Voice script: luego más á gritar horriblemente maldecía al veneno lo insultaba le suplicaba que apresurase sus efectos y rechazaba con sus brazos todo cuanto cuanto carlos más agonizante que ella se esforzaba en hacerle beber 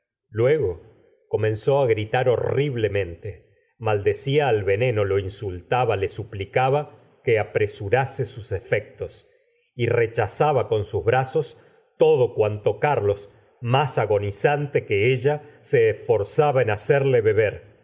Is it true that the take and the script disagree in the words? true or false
true